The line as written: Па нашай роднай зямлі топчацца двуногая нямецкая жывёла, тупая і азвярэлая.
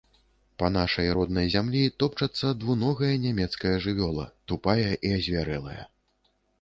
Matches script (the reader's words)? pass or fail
pass